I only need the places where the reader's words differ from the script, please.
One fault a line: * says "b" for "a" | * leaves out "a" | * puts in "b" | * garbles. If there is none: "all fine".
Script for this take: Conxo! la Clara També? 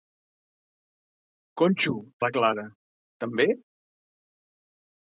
all fine